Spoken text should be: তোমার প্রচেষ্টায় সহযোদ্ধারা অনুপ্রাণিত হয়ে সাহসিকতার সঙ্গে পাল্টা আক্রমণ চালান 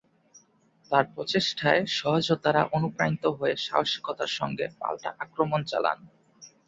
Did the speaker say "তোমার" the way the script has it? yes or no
no